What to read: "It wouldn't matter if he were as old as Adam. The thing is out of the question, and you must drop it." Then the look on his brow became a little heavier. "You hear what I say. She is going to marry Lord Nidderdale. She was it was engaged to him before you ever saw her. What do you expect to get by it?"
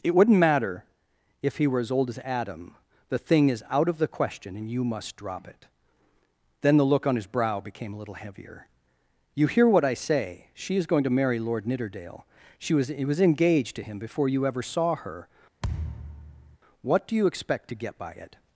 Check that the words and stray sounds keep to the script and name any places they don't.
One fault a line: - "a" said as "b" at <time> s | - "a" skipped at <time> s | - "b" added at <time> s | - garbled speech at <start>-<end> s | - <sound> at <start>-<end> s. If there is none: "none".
- thud at 15.6-16.6 s